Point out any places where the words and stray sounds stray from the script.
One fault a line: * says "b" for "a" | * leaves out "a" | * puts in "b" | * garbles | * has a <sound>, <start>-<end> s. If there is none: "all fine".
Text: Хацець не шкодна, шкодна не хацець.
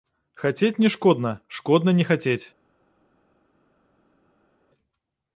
all fine